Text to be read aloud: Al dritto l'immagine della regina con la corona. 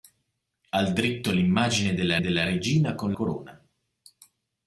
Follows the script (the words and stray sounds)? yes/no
no